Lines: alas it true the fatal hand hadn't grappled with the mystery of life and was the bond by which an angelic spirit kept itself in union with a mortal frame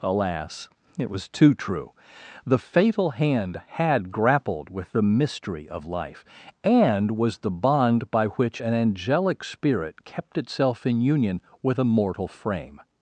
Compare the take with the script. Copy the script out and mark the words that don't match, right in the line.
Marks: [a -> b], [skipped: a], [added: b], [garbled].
alas it [added: was too] true the fatal hand [hadn't -> had] grappled with the mystery of life and was the bond by which an angelic spirit kept itself in union with a mortal frame